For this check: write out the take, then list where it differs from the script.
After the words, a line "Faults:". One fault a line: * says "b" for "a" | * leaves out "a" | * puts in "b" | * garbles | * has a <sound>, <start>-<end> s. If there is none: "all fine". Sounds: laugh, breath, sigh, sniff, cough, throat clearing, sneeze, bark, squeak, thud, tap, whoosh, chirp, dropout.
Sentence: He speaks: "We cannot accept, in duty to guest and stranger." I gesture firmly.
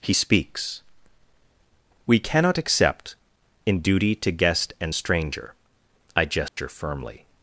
He speaks: "We cannot accept, in duty to guest and stranger." I gesture firmly.
Faults:
* has a dropout, 6.5-6.6 s